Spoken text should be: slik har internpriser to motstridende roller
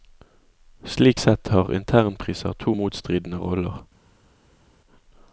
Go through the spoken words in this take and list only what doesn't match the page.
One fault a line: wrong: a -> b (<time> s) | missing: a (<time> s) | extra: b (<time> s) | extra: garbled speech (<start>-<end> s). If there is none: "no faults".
extra: sett (1.2 s)